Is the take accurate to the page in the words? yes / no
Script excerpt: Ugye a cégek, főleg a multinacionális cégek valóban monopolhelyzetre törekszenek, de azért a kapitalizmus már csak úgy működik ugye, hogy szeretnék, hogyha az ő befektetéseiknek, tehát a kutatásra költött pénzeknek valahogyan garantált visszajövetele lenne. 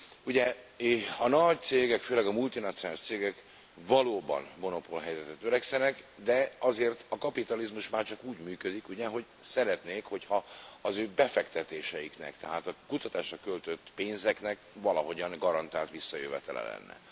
no